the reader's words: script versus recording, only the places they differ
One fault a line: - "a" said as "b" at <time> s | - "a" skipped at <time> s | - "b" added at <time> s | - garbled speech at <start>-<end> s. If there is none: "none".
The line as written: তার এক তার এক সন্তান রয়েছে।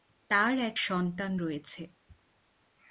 - "তার এক" skipped at 0.8 s